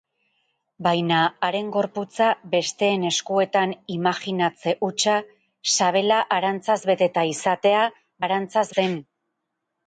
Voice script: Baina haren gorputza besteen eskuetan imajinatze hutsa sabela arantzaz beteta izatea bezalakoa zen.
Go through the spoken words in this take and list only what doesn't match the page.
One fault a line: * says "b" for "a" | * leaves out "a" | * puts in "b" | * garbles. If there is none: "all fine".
* says "arantzaz" for "bezalakoa"